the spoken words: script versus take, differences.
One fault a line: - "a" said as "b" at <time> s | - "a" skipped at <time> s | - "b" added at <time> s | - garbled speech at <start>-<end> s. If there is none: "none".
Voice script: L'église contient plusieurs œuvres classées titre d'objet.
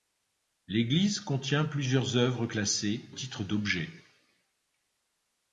none